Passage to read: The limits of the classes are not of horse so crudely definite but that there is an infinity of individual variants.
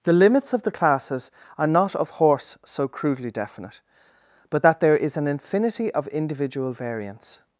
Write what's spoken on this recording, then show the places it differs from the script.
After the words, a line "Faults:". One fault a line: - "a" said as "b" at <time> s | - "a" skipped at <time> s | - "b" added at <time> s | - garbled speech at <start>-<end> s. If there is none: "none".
The limits of the classes are not of horse so crudely definite but that there is an infinity of individual variants.
Faults:
none